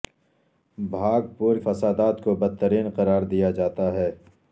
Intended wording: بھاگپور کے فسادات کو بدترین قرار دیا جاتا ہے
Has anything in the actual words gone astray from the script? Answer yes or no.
yes